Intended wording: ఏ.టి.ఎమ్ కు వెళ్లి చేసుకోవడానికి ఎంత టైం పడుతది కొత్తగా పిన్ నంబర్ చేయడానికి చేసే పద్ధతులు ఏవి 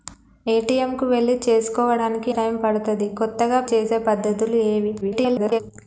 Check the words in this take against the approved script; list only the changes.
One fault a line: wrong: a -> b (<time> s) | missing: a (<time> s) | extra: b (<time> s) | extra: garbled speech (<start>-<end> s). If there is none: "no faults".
missing: ఎంత (2.3 s)
missing: పిన్ నంబర్ చేయడానికి (3.6 s)
extra: garbled speech (5.0-5.6 s)